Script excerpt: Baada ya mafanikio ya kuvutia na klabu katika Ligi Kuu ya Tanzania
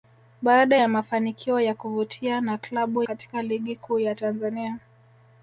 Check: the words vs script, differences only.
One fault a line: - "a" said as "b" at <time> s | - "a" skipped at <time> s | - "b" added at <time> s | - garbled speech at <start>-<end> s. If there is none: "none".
none